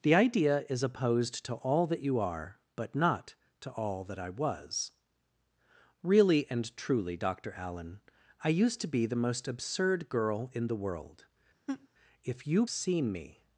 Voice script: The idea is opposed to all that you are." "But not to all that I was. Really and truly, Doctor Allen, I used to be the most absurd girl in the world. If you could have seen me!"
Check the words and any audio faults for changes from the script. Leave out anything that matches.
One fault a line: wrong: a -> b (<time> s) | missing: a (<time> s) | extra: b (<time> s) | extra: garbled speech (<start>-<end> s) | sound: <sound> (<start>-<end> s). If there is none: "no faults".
sound: laugh (11.7-11.9 s)
missing: could have (12.7 s)